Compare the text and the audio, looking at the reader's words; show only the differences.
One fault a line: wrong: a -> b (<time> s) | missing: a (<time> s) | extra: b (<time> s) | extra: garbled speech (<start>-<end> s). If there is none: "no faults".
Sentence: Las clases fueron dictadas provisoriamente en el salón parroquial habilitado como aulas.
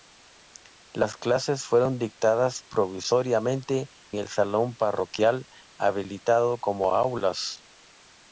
missing: en (3.9 s)